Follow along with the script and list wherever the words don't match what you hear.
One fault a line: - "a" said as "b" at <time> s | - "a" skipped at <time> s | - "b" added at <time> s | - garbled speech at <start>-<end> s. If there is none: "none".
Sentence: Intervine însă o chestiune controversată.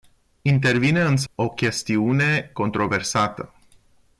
none